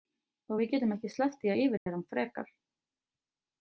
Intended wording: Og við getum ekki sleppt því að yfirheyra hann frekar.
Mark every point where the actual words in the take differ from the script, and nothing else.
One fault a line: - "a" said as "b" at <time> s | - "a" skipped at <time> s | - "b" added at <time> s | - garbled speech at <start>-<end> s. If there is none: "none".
none